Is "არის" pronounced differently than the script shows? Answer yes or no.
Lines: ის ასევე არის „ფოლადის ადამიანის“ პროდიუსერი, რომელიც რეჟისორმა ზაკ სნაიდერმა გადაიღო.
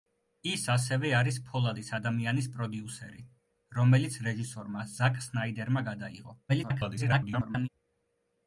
no